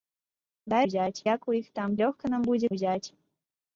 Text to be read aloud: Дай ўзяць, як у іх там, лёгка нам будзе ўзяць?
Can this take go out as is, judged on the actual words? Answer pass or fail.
pass